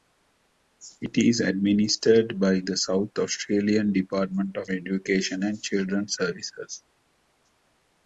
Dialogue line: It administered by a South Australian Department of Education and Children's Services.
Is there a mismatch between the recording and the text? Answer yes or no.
yes